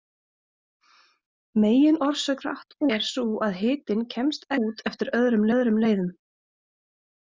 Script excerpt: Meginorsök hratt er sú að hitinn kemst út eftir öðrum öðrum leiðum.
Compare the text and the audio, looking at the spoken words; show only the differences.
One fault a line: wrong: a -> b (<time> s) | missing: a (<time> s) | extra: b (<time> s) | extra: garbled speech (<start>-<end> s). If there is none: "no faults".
no faults